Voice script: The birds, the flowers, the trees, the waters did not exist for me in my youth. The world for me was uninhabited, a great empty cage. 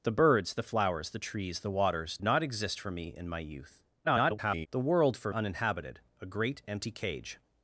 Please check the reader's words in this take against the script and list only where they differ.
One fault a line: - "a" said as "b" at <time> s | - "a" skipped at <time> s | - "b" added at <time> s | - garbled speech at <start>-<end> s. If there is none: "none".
- "did" skipped at 2.2 s
- garbled speech at 4.0-4.7 s
- "me was" skipped at 5.3 s